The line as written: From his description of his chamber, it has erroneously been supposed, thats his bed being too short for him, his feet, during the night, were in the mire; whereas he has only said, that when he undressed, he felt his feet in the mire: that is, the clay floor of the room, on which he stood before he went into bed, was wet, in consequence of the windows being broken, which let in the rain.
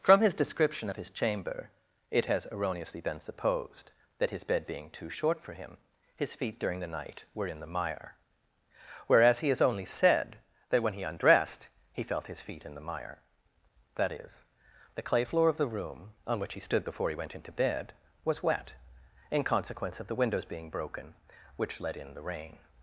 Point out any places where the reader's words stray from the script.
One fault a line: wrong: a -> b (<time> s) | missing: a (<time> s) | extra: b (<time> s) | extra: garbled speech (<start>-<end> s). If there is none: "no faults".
wrong: thats -> that (4.2 s)